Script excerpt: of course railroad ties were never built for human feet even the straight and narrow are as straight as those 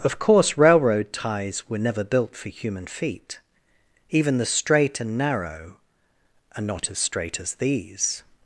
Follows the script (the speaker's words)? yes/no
no